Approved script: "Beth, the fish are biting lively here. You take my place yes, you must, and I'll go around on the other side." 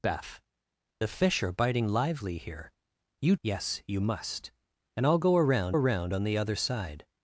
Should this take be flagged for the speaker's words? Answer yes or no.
yes